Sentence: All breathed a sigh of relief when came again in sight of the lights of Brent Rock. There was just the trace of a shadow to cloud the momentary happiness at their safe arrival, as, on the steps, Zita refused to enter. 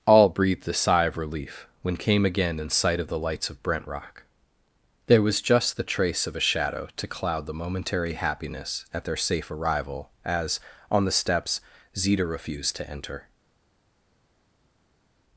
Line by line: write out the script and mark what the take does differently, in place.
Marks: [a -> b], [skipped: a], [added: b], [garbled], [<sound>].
All breathed a sigh of relief when came again in sight of the lights of Brent Rock. There was just the trace of a shadow to cloud the momentary happiness at their safe arrival, as, on the steps, Zita refused to enter.